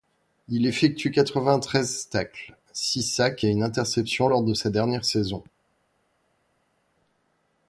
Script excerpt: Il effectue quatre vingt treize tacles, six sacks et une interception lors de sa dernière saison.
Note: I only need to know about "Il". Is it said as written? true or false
true